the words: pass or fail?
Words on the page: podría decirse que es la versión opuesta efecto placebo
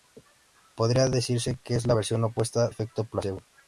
pass